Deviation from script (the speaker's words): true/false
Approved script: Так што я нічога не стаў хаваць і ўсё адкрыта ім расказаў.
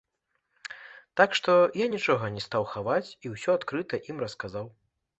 false